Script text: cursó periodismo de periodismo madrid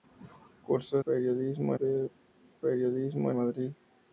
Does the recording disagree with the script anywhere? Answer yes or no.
no